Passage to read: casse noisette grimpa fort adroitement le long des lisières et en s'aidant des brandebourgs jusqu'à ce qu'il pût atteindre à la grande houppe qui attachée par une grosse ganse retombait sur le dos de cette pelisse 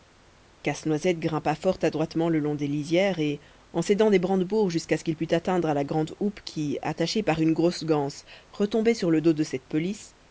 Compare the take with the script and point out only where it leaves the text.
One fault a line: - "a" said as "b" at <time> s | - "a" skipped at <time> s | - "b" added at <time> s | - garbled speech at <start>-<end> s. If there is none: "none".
none